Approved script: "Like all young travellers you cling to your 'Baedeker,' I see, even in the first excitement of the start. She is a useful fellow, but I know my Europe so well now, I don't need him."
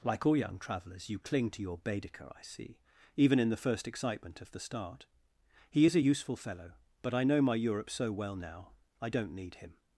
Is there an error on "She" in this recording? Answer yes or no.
yes